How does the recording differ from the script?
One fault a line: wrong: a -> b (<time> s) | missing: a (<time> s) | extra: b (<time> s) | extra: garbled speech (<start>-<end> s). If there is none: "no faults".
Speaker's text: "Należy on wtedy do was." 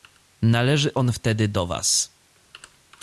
no faults